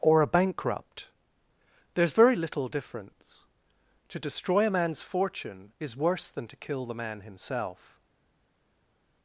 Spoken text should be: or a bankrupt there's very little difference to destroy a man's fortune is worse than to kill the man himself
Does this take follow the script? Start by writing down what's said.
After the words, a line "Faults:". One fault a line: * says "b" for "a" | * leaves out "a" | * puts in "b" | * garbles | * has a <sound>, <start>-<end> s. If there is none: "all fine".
or a bankrupt there's very little difference to destroy a man's fortune is worse than to kill the man himself
Faults:
all fine